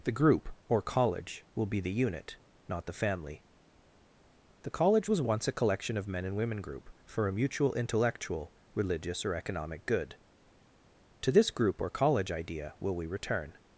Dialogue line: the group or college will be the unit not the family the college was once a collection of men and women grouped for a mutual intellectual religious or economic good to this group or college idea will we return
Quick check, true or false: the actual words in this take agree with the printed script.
false